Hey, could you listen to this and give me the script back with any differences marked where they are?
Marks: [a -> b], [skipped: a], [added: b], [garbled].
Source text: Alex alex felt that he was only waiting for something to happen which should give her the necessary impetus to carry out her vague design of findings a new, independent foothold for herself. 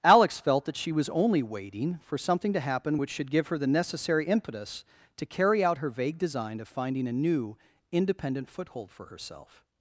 Alex [skipped: alex] felt that [he -> she] was only waiting for something to happen which should give her the necessary impetus to carry out her vague design of [findings -> finding] a new, independent foothold for herself.